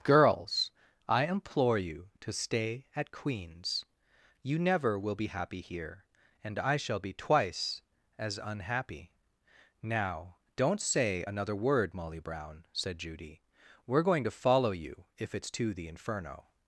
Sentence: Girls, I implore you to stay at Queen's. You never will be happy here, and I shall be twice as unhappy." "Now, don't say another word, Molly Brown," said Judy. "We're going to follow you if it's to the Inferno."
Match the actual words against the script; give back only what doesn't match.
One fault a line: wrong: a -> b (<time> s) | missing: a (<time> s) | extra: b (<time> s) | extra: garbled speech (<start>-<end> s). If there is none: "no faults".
no faults